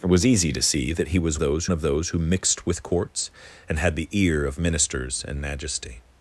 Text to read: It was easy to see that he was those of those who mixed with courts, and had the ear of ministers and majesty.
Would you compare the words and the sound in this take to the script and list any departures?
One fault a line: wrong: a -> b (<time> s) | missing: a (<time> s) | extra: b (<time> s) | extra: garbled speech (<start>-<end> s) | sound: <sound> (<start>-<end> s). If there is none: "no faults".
no faults